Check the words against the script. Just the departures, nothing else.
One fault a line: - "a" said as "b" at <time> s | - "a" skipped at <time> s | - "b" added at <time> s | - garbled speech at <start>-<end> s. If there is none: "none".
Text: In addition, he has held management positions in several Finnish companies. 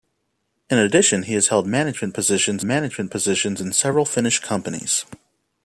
- "management positions" added at 2.6 s